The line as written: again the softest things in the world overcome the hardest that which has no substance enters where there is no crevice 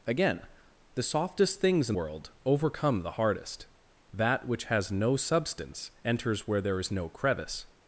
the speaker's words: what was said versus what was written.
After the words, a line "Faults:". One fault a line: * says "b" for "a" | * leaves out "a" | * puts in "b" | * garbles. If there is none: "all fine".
again the softest things in world overcome the hardest that which has no substance enters where there is no crevice
Faults:
* leaves out "the"